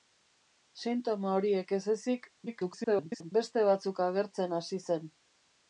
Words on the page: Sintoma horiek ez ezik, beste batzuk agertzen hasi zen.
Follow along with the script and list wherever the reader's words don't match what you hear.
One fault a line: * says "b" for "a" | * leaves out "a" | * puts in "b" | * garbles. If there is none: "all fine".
* garbles